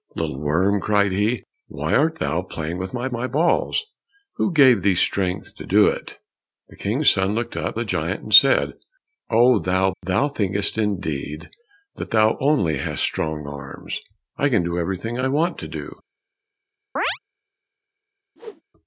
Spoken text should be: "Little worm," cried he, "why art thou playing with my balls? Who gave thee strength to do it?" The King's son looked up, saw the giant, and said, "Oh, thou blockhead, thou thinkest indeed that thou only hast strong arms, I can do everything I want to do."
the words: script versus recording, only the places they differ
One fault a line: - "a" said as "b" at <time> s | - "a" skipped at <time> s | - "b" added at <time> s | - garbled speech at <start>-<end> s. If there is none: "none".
- "my" added at 3.1 s
- "saw" skipped at 7.8 s
- "blockhead" skipped at 9.9 s